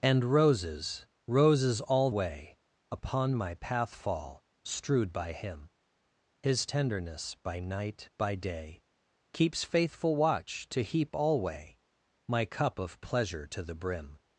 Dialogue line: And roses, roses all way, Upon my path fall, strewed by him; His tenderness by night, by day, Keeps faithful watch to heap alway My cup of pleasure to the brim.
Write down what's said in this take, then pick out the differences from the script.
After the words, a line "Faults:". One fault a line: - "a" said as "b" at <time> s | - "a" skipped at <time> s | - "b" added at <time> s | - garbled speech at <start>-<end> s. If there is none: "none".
And roses, roses all way, Upon my path fall, strewed by him; His tenderness by night, by day, Keeps faithful watch to heap alway My cup of pleasure to the brim.
Faults:
none